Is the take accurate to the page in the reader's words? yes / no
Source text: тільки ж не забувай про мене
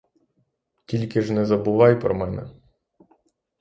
yes